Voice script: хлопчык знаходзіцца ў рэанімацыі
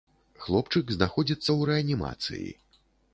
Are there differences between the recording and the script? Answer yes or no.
no